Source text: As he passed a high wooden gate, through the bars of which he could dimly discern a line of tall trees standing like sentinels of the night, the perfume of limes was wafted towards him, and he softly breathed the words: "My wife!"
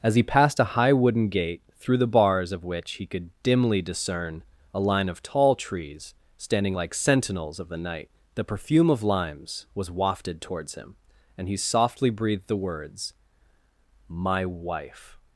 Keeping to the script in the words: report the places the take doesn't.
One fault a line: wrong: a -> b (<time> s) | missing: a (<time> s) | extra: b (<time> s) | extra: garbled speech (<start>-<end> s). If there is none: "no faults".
no faults